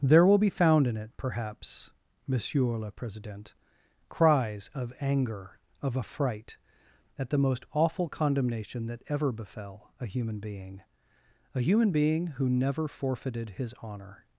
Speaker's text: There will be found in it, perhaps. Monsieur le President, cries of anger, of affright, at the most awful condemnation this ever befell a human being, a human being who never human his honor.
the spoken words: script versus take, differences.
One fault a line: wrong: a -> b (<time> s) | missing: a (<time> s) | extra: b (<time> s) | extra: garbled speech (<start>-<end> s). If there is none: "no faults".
wrong: this -> that (8.9 s)
wrong: human -> forfeited (12.9 s)